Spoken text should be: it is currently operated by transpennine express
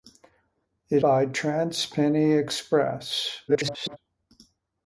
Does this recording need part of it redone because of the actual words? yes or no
yes